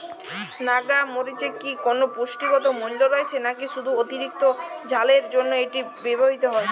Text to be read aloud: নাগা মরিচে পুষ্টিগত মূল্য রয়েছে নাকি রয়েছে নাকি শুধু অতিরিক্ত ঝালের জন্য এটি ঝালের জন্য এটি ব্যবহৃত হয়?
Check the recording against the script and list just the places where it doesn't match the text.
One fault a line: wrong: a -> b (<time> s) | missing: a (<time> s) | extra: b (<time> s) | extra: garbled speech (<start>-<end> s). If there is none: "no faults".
extra: কি কোনো (1.6 s)
missing: রয়েছে নাকি (3.6 s)
missing: ঝালের জন্য এটি (5.8 s)